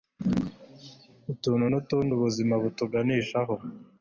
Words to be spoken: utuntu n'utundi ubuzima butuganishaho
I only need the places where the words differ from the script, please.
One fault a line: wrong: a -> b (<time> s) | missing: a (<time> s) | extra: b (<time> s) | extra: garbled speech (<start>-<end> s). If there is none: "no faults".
no faults